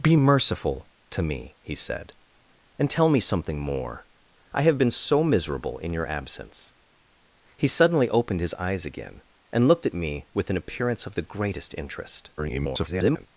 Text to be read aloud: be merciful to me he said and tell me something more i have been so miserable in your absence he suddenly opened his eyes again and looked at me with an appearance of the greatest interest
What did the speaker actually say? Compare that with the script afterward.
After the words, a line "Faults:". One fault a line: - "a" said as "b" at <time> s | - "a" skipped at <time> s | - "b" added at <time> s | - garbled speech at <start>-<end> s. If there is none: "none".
be merciful to me he said and tell me something more i have been so miserable in your absence he suddenly opened his eyes again and looked at me with an appearance of the greatest interest [garbled]
Faults:
- garbled speech at 12.4-13.3 s